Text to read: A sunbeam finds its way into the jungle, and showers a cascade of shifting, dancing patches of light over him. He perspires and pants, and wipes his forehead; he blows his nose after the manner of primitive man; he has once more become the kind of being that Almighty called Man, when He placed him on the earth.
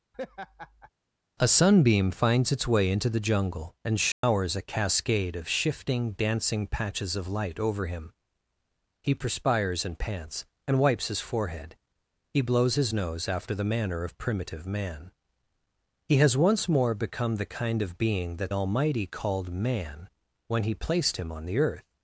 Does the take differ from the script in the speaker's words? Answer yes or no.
no